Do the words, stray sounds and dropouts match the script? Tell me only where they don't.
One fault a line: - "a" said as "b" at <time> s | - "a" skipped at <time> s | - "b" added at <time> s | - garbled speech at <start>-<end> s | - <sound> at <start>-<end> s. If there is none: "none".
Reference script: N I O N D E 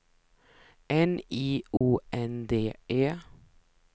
- dropout at 1.8-1.8 s